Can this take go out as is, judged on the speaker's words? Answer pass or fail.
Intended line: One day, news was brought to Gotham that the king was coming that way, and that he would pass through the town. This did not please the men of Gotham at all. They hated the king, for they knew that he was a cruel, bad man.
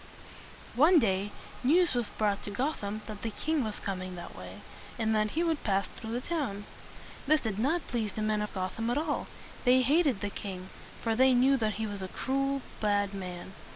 pass